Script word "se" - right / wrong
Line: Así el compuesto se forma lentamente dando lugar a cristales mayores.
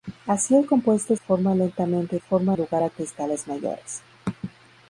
wrong